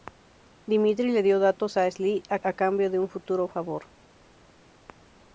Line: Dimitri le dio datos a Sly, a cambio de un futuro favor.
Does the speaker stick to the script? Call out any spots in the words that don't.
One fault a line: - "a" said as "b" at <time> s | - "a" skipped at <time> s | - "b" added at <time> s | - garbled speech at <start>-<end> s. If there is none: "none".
- "a" added at 2.4 s